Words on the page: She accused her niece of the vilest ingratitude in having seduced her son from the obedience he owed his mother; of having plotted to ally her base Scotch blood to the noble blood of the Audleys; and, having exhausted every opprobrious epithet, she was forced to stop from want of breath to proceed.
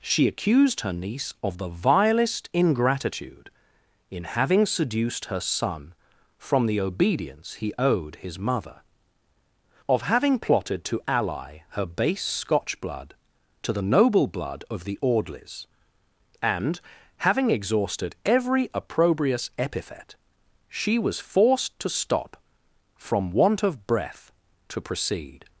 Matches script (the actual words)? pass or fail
pass